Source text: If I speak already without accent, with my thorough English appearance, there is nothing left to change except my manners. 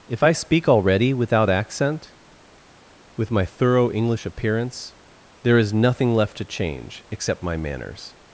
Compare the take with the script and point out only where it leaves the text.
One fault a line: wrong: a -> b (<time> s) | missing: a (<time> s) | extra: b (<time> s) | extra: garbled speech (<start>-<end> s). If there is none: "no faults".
no faults